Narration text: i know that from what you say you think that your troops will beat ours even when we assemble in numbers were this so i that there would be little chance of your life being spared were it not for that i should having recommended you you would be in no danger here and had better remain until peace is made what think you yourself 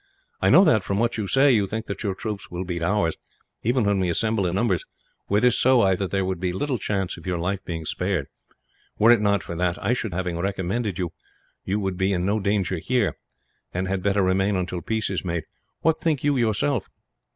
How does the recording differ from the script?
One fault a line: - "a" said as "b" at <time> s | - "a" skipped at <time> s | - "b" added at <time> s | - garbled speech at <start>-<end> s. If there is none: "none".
none